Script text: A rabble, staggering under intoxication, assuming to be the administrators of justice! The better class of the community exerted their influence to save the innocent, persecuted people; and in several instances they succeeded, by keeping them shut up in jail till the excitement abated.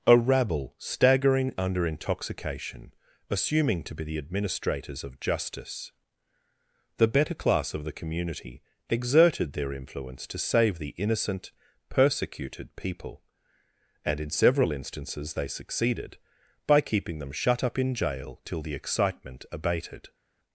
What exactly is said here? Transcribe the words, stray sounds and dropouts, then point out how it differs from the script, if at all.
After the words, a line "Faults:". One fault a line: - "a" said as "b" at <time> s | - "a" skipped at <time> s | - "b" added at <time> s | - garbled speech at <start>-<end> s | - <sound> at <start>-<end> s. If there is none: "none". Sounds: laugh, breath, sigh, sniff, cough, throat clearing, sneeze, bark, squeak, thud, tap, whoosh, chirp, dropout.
A rabble, staggering under intoxication, assuming to be the administrators of justice! The better class of the community exerted their influence to save the innocent, persecuted people; and in several instances they succeeded, by keeping them shut up in jail till the excitement abated.
Faults:
none